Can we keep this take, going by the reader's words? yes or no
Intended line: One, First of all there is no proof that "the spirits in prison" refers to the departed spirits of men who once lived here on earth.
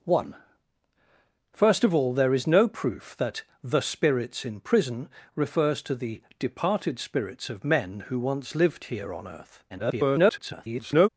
no